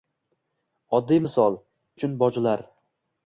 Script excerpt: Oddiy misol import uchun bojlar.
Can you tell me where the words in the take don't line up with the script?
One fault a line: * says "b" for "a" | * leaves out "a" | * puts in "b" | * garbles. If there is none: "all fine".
* leaves out "import"